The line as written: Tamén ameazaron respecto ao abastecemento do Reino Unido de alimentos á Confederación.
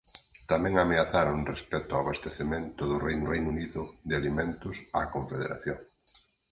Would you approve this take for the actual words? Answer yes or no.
no